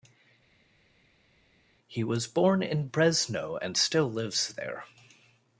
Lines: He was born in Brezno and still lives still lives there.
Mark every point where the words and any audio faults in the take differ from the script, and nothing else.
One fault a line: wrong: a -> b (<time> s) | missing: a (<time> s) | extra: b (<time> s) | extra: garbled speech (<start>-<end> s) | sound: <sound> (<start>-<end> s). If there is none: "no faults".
missing: still lives (4.5 s)